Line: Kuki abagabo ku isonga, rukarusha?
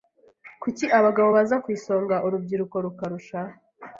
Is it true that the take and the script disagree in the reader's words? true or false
true